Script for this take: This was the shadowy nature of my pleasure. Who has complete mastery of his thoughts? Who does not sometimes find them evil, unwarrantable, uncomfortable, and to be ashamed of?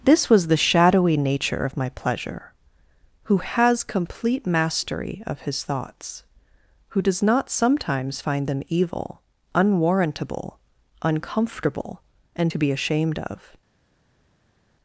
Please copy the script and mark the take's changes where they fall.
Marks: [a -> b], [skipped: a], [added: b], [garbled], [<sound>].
This was the shadowy nature of my pleasure. Who has complete mastery of his thoughts? Who does not sometimes find them evil, unwarrantable, uncomfortable, and to be ashamed of?